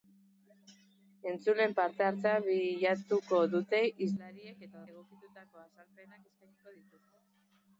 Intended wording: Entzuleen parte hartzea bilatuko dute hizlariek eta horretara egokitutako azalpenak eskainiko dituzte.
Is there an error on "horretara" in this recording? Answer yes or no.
yes